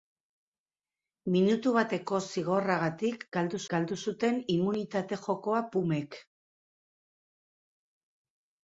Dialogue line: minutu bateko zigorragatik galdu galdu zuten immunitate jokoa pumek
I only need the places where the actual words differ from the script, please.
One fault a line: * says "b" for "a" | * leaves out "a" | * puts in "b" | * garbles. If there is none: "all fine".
all fine